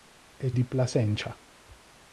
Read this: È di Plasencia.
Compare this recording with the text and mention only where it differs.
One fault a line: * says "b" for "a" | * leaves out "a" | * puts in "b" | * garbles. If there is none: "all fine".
all fine